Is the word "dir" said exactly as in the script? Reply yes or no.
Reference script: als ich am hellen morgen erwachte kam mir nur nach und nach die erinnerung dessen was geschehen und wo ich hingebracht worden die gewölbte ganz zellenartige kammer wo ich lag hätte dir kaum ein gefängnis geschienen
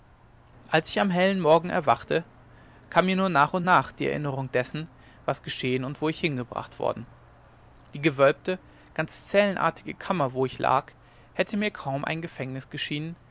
no